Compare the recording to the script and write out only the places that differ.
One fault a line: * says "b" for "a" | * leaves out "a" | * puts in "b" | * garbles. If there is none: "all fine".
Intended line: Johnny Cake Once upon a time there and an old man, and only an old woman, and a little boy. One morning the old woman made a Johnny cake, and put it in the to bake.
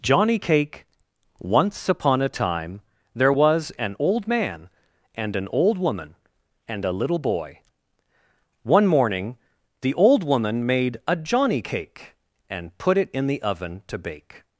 * says "was" for "and"
* leaves out "only"
* puts in "oven"